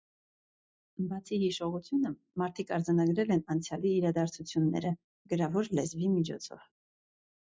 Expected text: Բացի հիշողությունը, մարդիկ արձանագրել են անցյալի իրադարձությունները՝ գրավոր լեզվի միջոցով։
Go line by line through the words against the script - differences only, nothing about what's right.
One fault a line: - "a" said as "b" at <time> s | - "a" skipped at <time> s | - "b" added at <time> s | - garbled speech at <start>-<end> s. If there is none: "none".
none